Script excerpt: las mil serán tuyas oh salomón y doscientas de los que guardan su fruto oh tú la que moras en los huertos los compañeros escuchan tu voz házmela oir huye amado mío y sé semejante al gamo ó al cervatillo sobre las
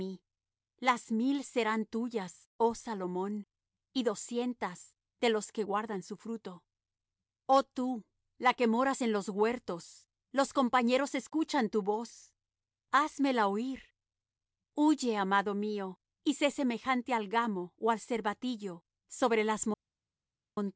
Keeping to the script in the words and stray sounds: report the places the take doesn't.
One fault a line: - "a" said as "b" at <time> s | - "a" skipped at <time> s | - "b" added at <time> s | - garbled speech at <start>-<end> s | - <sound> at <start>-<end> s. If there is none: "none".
none